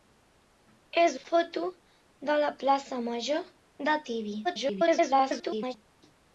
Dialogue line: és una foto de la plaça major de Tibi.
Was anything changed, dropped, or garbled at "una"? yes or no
yes